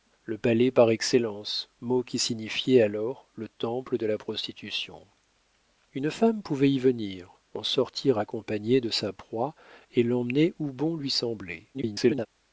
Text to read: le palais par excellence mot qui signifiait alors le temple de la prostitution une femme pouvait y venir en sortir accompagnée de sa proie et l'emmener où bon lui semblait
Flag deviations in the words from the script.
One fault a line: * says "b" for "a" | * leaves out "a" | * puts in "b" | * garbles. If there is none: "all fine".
* garbles